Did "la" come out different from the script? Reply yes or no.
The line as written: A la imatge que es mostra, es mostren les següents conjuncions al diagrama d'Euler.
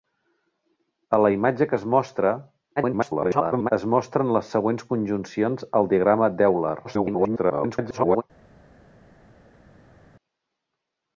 no